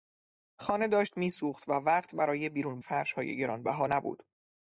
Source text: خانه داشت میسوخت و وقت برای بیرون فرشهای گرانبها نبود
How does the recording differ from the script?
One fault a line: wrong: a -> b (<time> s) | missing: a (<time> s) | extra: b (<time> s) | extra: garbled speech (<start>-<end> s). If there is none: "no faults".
no faults